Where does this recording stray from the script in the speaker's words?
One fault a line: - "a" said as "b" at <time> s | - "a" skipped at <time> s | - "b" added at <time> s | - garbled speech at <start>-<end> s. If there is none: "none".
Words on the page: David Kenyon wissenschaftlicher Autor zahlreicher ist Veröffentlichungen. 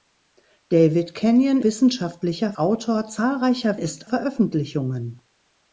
none